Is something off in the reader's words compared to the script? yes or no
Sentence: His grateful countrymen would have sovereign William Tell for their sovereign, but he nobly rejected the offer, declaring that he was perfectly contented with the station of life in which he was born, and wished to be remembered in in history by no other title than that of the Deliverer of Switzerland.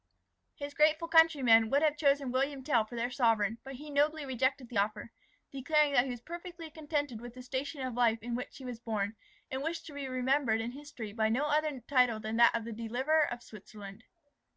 yes